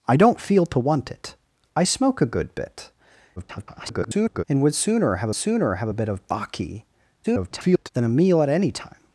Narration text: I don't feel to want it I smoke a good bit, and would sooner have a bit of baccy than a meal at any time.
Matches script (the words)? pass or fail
fail